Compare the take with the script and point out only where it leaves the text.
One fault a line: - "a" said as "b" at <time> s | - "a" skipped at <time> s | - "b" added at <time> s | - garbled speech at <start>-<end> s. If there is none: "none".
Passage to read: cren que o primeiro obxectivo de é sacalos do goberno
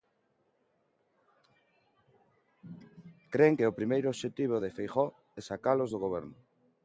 - "feijóo" added at 4.8 s